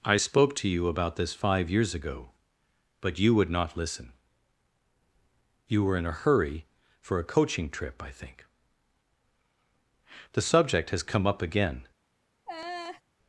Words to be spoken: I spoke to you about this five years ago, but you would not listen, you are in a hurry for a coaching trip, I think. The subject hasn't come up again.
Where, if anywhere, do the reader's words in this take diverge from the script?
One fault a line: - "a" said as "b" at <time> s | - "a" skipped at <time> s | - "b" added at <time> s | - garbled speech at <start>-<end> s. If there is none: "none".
- "are" said as "were" at 5.8 s
- "hasn't" said as "has" at 10.9 s